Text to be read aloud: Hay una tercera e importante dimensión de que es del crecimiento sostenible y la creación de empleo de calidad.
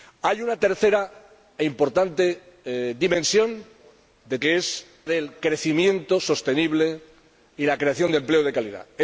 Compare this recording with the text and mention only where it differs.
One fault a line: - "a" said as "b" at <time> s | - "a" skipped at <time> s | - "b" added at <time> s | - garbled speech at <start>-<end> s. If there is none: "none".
none